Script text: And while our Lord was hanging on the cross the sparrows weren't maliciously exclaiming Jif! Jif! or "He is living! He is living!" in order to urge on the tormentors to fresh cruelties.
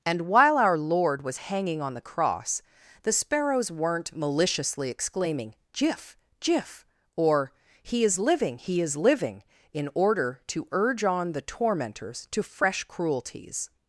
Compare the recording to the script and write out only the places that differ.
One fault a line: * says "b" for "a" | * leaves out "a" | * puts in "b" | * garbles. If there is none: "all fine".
all fine